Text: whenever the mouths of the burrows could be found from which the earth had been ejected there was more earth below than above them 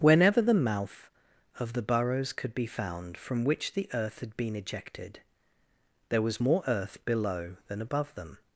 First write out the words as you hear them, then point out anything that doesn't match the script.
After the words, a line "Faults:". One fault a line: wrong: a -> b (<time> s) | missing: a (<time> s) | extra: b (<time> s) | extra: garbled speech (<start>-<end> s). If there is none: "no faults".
whenever the mouth of the burrows could be found from which the earth had been ejected there was more earth below than above them
Faults:
wrong: mouths -> mouth (0.6 s)